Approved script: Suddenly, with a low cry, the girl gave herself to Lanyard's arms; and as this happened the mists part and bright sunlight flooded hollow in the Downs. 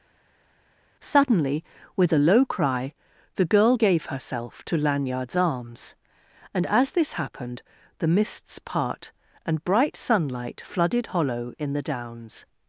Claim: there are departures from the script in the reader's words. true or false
false